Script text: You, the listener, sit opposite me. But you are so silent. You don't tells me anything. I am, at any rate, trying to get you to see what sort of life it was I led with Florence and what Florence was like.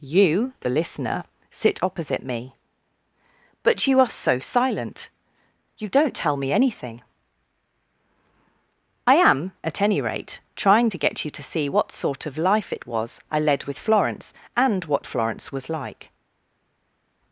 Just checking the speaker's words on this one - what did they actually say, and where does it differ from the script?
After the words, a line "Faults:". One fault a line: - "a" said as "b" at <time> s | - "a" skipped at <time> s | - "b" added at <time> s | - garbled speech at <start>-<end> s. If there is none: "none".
You, the listener, sit opposite me. But you are so silent. You don't tell me anything. I am, at any rate, trying to get you to see what sort of life it was I led with Florence and what Florence was like.
Faults:
- "tells" said as "tell" at 6.2 s